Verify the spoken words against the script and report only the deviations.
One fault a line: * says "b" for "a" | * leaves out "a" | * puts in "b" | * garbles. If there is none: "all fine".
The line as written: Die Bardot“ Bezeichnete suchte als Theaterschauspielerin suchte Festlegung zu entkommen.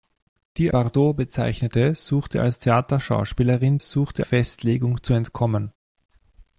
all fine